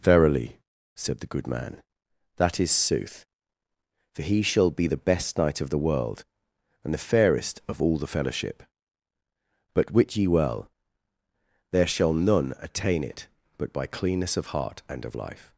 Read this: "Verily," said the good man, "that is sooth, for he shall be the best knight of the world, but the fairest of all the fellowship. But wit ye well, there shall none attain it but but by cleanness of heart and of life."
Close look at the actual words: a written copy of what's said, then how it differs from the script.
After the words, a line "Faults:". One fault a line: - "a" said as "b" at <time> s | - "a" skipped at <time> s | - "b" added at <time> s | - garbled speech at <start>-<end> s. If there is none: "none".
"Verily," said the good man, "that is sooth, for he shall be the best knight of the world, and the fairest of all the fellowship. But wit ye well, there shall none attain it but by cleanness of heart and of life."
Faults:
- "but" said as "and" at 6.8 s
- "but" skipped at 13.7 s